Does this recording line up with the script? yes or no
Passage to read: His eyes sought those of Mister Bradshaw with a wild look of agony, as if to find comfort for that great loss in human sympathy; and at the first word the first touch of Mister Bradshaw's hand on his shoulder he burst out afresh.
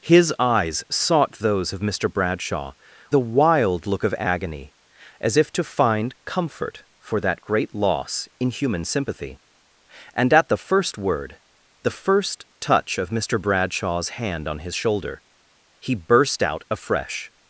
no